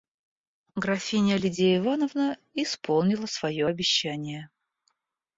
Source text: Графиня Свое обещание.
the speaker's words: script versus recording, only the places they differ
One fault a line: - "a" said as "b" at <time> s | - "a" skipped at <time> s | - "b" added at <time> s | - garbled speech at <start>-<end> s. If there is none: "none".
- "Лидия Ивановна исполнила" added at 1.4 s